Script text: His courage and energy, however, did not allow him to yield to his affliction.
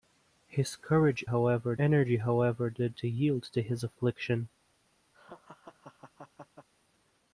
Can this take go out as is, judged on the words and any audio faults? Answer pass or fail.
fail